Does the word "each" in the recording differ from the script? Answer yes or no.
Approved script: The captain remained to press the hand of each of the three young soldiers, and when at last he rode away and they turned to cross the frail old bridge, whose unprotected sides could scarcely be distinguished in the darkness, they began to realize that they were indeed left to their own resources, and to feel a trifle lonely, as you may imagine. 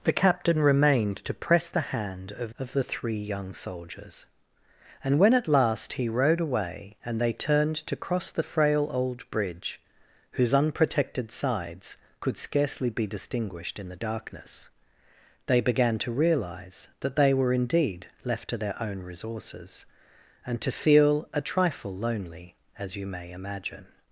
yes